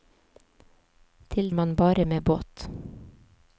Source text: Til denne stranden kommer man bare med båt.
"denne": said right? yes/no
no